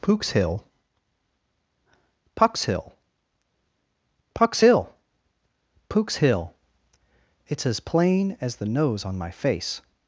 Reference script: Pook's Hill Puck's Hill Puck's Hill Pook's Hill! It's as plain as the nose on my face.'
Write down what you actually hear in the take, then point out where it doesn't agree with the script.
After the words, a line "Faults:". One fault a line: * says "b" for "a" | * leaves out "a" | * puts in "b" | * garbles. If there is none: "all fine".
Pook's Hill Puck's Hill Puck's Hill Pook's Hill! It's as plain as the nose on my face.'
Faults:
all fine